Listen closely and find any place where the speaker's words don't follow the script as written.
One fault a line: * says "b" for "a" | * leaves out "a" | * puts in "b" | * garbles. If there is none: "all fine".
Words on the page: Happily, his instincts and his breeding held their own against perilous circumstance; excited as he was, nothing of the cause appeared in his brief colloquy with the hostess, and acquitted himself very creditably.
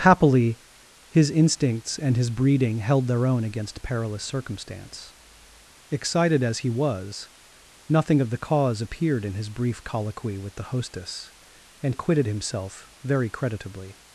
all fine